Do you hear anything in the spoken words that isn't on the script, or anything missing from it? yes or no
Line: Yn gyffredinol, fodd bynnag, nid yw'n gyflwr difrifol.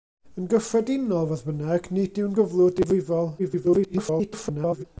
yes